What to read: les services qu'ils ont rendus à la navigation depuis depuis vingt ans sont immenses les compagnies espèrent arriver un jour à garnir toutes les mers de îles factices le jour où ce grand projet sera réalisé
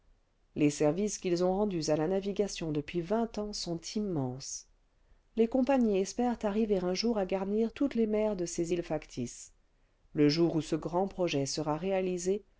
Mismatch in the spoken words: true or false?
true